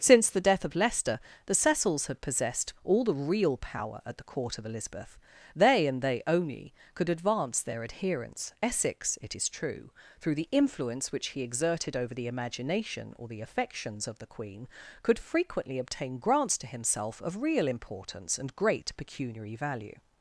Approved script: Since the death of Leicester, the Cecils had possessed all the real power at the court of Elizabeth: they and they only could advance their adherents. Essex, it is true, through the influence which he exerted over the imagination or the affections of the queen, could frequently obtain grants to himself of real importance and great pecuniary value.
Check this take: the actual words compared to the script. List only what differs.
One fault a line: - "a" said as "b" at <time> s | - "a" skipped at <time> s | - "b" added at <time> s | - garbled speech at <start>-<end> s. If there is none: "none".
none